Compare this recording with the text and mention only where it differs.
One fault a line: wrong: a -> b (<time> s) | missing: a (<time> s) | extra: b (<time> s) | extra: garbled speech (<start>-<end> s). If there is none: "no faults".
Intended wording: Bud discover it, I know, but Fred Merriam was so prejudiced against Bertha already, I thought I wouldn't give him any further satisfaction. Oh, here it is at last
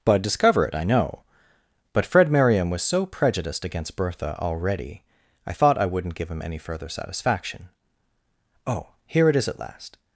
no faults